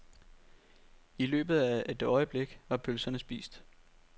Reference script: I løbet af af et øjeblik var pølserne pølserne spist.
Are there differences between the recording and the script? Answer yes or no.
yes